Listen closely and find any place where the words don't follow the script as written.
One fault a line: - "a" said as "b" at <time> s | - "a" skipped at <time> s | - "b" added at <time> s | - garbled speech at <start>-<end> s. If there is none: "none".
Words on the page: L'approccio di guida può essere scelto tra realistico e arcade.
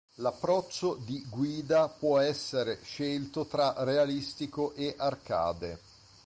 none